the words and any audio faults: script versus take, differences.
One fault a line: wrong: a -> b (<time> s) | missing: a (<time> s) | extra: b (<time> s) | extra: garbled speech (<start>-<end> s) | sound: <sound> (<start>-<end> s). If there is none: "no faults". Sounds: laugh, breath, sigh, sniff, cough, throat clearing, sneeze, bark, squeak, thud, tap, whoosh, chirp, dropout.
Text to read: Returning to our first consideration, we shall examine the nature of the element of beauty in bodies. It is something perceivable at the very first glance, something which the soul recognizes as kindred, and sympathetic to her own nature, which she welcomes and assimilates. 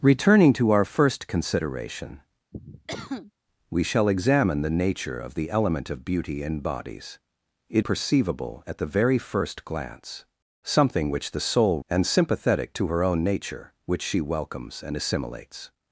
sound: cough (2.5-3.3 s)
missing: is something (7.9 s)
missing: recognizes as kindred (11.8 s)